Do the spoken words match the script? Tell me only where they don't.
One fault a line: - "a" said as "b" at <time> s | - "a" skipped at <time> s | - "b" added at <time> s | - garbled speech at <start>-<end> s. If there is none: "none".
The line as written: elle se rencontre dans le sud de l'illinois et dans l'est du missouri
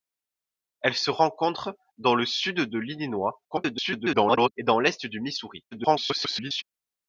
- garbled speech at 3.5-4.5 s
- garbled speech at 5.7-6.6 s